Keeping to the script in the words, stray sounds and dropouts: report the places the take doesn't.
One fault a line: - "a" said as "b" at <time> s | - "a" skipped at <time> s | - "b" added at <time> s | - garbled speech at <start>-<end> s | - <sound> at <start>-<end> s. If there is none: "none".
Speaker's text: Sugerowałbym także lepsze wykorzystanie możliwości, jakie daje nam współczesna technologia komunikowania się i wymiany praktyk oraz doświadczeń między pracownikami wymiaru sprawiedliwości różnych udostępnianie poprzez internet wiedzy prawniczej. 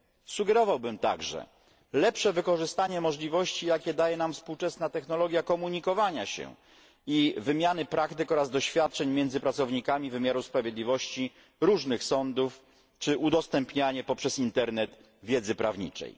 - "sądów czy" added at 12.0 s